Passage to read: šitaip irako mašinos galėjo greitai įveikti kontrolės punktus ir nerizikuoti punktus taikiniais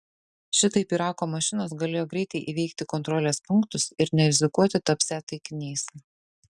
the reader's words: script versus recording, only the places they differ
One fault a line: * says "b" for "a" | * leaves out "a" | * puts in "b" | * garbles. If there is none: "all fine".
* says "tapsią" for "punktus"